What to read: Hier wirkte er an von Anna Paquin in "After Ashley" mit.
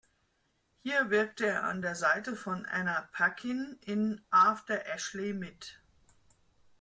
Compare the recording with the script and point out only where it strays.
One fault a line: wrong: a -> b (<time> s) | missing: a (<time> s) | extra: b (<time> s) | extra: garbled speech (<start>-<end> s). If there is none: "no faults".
extra: der Seite (1.8 s)